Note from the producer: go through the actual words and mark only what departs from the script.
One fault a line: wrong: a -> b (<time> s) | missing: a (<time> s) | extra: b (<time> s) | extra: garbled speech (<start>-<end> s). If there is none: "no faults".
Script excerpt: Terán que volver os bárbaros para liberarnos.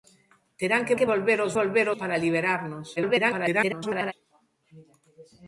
extra: que (1.0 s)
wrong: bárbaros -> volver (1.6 s)
extra: garbled speech (3.0-4.1 s)